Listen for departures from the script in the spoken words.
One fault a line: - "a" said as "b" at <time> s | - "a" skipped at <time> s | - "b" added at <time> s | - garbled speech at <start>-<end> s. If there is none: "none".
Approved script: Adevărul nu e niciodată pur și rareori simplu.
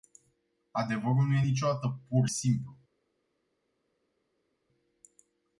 - "și rareori" skipped at 2.3 s